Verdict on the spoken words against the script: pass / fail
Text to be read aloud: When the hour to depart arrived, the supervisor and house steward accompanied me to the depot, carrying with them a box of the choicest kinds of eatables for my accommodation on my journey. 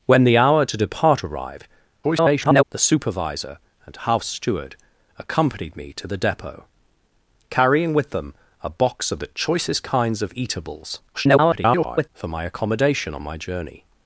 fail